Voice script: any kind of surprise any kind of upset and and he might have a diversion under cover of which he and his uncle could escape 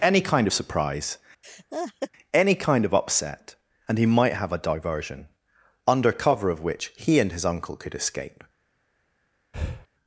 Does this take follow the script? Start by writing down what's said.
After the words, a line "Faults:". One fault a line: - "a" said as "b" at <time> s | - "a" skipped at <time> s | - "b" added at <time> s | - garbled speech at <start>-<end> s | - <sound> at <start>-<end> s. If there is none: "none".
any kind of surprise any kind of upset and he might have a diversion under cover of which he and his uncle could escape
Faults:
- laugh at 1.4-2.1 s
- "and" skipped at 4.0 s
- breath at 9.5-9.9 s